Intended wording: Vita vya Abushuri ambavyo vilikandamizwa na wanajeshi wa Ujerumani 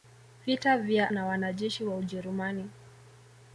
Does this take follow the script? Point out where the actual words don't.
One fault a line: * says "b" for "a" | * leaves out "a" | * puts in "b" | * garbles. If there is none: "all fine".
* leaves out "Abushuri ambavyo vilikandamizwa"